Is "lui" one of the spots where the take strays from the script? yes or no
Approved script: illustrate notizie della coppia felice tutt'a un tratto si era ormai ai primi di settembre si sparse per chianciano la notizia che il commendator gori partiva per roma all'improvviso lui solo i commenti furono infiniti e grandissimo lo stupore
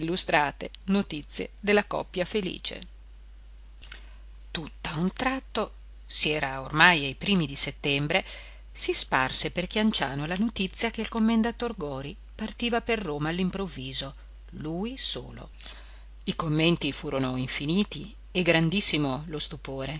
no